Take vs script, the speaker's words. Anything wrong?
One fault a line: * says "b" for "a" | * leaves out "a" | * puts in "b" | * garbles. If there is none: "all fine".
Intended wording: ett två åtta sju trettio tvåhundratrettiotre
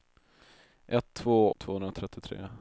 * leaves out "åtta sju trettio"